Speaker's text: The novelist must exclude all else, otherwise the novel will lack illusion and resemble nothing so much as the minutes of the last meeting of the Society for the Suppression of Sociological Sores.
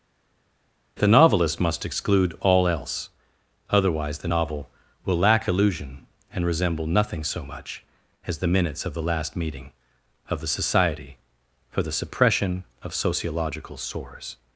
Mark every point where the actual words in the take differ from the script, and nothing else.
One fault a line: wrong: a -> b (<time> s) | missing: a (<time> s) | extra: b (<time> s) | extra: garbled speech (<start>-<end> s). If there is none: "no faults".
no faults